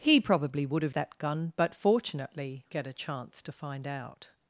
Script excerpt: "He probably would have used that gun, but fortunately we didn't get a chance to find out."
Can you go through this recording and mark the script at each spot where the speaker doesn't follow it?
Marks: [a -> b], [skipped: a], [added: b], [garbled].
"He probably would have [skipped: used] that gun, but fortunately [skipped: we didn't] get a chance to find out."